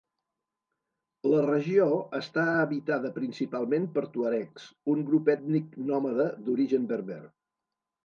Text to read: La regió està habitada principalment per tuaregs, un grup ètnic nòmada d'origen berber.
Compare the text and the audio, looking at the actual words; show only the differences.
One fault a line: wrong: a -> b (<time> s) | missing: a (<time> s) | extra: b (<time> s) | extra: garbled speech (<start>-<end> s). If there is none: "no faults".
no faults